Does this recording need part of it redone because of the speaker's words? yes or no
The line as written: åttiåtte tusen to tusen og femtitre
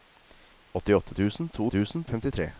no